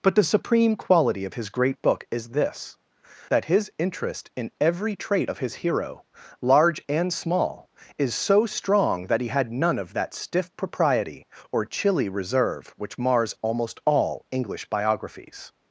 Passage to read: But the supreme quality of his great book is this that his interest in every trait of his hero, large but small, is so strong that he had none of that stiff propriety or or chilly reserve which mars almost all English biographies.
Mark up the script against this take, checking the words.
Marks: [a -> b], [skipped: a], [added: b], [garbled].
But the supreme quality of his great book is this that his interest in every trait of his hero, large [but -> and] small, is so strong that he had none of that stiff propriety or [skipped: or] chilly reserve which mars almost all English biographies.